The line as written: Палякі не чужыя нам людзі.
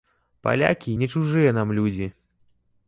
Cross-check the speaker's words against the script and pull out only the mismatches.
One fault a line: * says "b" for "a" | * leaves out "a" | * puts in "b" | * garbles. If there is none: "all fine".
all fine